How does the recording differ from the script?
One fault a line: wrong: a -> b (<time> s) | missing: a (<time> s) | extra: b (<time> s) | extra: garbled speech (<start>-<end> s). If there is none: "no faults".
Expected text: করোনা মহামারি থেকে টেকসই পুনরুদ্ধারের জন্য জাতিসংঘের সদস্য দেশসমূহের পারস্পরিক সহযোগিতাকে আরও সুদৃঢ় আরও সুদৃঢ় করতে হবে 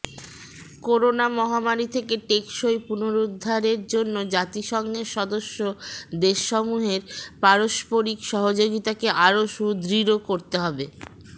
missing: আরও সুদৃঢ় (10.2 s)